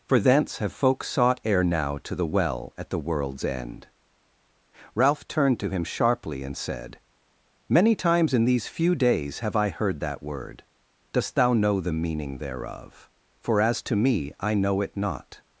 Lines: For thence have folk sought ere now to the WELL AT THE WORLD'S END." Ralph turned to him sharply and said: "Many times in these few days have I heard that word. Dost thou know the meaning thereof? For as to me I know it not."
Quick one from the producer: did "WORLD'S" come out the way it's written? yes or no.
yes